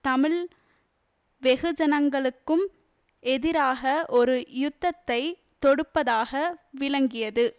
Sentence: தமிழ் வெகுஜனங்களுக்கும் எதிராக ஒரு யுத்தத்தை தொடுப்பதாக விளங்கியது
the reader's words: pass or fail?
pass